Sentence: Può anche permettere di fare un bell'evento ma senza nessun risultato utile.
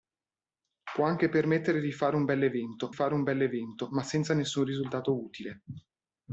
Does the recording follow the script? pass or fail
fail